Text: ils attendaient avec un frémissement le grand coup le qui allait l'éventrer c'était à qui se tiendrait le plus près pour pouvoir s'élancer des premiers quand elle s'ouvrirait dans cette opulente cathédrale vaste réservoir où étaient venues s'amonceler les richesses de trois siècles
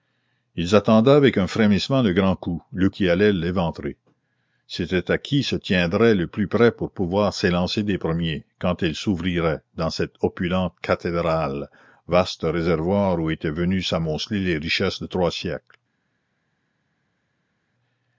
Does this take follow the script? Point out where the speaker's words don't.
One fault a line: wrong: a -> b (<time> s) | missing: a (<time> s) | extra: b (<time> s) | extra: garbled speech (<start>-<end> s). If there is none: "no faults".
no faults